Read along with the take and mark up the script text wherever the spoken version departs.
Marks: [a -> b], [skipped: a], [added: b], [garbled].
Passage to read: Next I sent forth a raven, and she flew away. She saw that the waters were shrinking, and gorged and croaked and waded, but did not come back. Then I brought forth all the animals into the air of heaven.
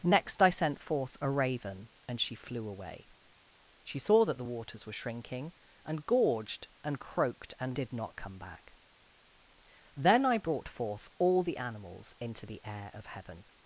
Next I sent forth a raven, and she flew away. She saw that the waters were shrinking, and gorged and croaked and [skipped: waded, but] did not come back. Then I brought forth all the animals into the air of heaven.